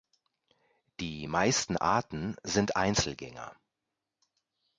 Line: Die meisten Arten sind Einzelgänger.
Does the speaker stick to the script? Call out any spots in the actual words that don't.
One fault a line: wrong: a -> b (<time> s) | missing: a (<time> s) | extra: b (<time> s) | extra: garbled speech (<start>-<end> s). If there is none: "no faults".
no faults